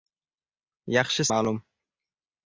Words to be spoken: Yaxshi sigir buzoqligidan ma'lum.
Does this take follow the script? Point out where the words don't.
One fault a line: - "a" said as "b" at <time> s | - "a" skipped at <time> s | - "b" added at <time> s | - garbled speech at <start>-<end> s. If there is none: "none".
- "sigir buzoqligidan" skipped at 1.2 s